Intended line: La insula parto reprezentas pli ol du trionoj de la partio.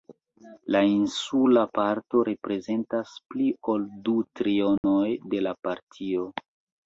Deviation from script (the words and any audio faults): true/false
true